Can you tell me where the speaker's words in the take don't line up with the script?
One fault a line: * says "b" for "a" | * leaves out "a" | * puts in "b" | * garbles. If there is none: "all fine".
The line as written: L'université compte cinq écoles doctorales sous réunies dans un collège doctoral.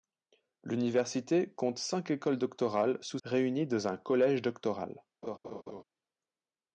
all fine